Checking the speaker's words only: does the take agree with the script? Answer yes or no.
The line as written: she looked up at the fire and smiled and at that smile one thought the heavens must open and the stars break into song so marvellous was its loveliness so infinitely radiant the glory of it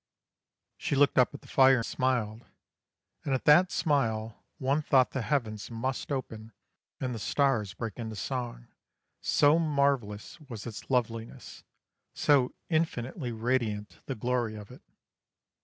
no